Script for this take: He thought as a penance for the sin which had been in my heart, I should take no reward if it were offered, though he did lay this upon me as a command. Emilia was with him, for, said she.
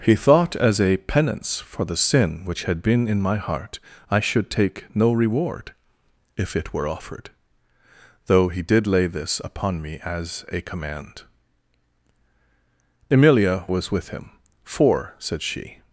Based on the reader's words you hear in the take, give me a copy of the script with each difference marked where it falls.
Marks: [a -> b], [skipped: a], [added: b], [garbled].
He thought as a penance for the sin which had been in my heart, I should take no reward if it were offered, though he did lay this upon me as a command. Emilia was with him, for, said she.